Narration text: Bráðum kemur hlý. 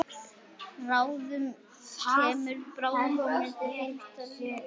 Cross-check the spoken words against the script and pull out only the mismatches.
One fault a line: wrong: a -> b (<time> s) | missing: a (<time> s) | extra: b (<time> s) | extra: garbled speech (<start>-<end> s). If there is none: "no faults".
extra: birtan (2.8 s)